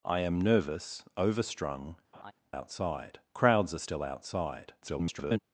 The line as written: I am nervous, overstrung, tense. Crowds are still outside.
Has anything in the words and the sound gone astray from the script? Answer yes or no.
yes